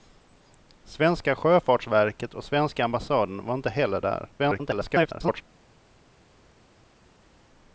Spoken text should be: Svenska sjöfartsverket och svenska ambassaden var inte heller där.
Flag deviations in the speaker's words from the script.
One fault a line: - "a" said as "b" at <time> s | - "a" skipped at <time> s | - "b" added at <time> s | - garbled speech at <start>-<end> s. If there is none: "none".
- garbled speech at 4.4-5.4 s